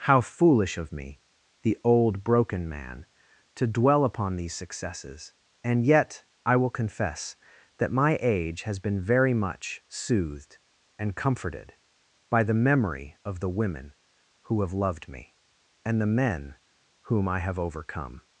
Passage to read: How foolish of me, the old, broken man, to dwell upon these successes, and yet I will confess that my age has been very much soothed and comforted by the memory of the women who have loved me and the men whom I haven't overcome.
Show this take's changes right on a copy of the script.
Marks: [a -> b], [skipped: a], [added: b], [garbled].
How foolish of me, the old, broken man, to dwell upon these successes, and yet I will confess that my age has been very much soothed and comforted by the memory of the women who have loved me and the men whom I [haven't -> have] overcome.